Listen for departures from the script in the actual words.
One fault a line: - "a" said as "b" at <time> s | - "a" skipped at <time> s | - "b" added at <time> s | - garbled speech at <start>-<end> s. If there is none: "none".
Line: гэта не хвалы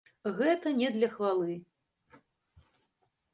- "для" added at 0.9 s